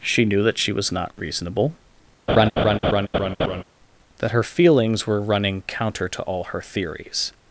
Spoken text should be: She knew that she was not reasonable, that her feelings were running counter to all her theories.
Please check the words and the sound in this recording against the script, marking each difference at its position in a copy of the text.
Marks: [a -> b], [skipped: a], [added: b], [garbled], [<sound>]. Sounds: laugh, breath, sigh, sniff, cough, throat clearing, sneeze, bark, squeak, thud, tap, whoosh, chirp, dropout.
She knew that she was not reasonable, [laugh] that her feelings were running counter to all her theories.